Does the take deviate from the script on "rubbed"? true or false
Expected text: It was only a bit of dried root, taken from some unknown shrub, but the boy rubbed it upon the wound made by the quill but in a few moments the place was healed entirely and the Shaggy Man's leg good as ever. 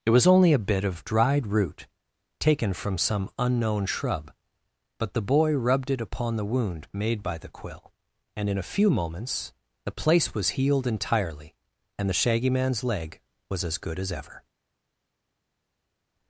false